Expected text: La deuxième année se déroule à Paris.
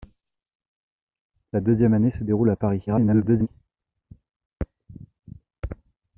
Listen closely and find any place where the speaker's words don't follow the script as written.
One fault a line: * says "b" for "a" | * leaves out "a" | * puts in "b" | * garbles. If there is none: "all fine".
* garbles